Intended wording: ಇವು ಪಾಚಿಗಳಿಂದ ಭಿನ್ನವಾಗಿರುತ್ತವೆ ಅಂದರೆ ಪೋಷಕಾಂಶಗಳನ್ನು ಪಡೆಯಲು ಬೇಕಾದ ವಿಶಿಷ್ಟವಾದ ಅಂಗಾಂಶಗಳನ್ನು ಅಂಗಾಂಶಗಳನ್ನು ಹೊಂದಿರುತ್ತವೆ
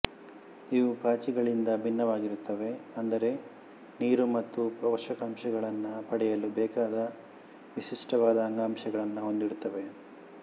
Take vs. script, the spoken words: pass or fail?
fail